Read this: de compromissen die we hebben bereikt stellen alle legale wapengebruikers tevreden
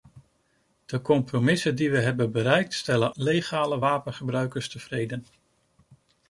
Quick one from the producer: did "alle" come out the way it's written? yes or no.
no